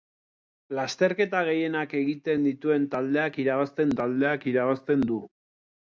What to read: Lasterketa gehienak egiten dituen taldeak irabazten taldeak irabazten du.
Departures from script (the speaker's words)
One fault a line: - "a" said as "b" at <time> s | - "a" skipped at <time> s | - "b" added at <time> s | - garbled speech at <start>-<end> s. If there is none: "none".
none